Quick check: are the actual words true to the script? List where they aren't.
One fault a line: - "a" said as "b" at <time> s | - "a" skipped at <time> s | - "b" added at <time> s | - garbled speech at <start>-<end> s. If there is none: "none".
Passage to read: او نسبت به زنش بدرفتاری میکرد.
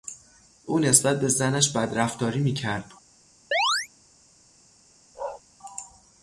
none